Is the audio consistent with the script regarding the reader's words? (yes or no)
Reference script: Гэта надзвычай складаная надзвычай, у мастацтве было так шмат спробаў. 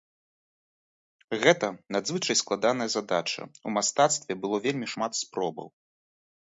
no